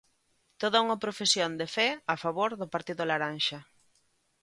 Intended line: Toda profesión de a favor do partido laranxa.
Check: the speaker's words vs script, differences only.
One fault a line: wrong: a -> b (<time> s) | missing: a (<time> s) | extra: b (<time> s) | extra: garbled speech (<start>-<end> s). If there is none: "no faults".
extra: unha (0.8 s)
extra: fe (1.8 s)